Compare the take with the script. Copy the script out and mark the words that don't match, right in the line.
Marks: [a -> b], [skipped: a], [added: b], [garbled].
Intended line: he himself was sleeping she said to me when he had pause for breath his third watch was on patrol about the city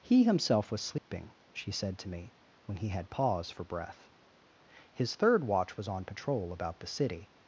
he himself was sleeping she said to me when he had pause for breath his third watch was on patrol about the city